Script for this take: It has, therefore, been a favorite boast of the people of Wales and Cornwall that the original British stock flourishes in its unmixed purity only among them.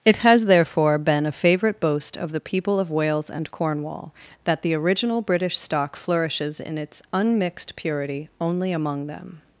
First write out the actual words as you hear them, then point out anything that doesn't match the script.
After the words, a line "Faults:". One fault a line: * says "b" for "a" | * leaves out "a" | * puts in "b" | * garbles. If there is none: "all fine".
It has, therefore, been a favorite boast of the people of Wales and Cornwall that the original British stock flourishes in its unmixed purity only among them.
Faults:
all fine